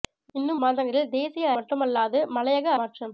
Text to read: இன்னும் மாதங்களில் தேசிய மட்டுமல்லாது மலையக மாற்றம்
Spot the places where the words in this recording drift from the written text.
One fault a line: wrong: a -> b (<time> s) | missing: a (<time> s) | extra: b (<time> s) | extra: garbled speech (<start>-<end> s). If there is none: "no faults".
no faults